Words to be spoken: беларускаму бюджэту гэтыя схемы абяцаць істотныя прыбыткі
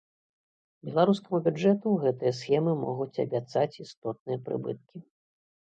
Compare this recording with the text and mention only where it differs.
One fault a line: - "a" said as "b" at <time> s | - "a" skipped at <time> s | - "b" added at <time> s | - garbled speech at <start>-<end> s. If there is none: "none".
- "могуць" added at 2.8 s